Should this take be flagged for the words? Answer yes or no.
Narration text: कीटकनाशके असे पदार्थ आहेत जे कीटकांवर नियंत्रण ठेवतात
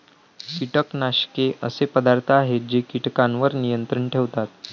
no